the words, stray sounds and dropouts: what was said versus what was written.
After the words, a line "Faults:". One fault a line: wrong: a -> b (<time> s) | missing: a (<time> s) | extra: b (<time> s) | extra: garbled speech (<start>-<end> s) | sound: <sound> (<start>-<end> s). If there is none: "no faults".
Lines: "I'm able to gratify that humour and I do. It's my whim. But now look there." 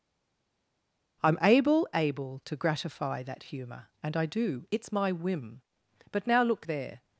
"I'm able able to gratify that humour and I do. It's my whim. But now look there."
Faults:
extra: able (1.9 s)